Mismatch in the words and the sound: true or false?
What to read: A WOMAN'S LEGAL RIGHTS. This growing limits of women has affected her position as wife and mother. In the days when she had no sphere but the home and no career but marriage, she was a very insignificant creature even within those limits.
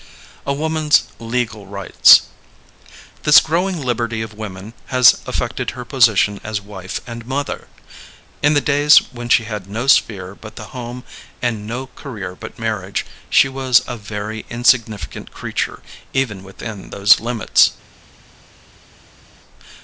true